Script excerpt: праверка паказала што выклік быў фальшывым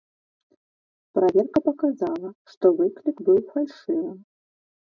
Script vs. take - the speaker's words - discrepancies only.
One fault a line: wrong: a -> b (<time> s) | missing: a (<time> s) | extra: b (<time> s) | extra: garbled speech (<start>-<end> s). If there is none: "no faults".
no faults